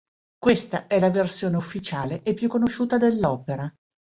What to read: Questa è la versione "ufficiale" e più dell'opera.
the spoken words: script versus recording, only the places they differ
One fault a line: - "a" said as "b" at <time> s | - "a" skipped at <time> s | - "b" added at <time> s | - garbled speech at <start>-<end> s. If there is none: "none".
- "conosciuta" added at 2.5 s